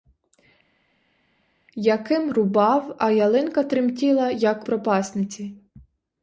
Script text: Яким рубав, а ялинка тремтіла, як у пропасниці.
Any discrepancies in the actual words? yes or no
yes